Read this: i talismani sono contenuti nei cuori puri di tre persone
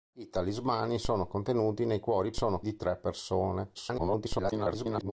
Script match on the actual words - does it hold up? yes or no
no